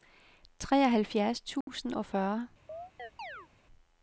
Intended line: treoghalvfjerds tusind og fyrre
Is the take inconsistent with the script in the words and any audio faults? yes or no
yes